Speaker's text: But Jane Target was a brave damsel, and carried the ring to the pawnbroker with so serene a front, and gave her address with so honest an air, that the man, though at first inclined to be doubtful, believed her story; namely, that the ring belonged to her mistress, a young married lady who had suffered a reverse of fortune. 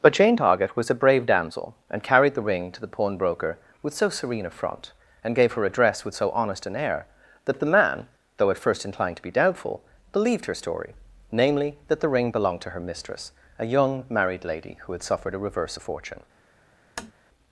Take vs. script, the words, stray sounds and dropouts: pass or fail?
fail